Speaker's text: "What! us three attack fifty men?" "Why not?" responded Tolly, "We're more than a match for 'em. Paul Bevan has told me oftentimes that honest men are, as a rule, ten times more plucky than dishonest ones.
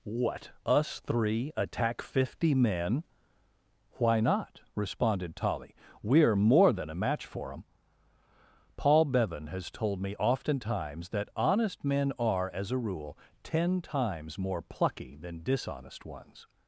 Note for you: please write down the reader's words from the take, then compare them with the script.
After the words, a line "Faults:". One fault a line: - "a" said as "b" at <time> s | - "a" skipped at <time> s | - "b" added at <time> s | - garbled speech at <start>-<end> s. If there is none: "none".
"What! us three attack fifty men?" "Why not?" responded Tolly, "We're more than a match for 'em. Paul Bevan has told me oftentimes that honest men are, as a rule, ten times more plucky than dishonest ones.
Faults:
none